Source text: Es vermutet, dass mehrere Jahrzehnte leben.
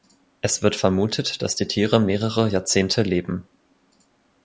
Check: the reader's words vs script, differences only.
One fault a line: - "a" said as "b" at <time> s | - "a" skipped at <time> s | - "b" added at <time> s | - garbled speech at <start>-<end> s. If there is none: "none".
- "wird" added at 0.6 s
- "die Tiere" added at 1.6 s